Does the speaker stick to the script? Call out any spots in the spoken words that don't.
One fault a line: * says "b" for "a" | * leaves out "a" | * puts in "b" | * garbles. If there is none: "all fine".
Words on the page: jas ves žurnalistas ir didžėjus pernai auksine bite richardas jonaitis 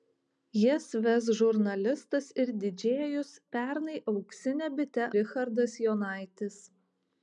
all fine